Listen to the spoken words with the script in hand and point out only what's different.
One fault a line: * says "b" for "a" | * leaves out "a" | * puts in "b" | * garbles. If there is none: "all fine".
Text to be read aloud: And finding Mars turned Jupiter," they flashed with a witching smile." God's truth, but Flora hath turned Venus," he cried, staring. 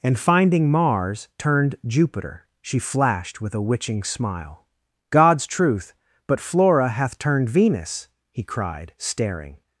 * says "she" for "they"